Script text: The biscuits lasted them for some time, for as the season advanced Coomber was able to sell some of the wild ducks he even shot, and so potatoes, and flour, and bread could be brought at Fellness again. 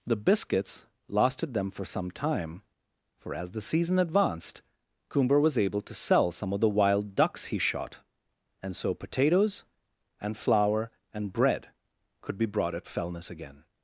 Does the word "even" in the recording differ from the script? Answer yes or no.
yes